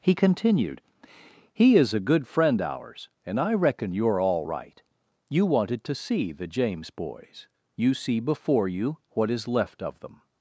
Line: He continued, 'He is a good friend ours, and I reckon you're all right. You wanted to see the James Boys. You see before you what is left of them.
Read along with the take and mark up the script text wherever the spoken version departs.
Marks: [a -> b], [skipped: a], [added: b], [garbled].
He continued, 'He is a good friend ours, and I reckon you're all right. You wanted to see the James Boys. You see before you what is left of them.